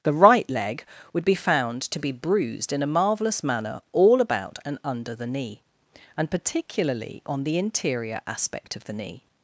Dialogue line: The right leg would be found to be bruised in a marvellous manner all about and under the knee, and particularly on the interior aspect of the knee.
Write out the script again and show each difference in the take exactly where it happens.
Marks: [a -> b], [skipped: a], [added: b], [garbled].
The right leg would be found to be bruised in a marvellous manner all about and under the knee, and particularly on the interior aspect of the knee.